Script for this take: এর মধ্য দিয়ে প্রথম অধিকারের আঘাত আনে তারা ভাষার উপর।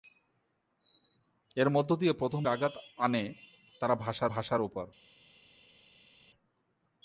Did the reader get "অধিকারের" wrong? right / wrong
wrong